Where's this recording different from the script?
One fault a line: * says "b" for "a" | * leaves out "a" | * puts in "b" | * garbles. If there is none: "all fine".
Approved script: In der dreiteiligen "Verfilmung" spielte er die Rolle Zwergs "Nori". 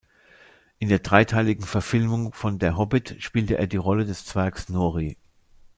* puts in "von Der Hobbit"
* puts in "des"